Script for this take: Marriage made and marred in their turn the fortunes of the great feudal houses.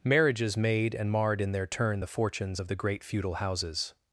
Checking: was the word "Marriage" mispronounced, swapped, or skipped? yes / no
yes